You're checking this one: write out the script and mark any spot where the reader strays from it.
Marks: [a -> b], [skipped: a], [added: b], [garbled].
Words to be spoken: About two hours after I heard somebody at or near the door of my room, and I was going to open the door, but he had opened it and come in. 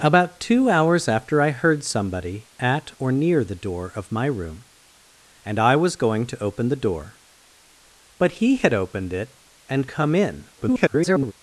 About two hours after I heard somebody at or near the door of my room, and I was going to open the door, but he had opened it and come in. [garbled]